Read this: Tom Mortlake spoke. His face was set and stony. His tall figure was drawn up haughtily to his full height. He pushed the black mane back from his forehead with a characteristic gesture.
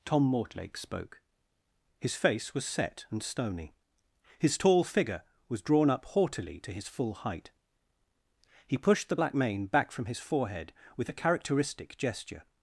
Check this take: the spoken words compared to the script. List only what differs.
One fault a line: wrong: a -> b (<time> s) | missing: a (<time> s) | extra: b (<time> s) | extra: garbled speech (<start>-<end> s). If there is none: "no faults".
no faults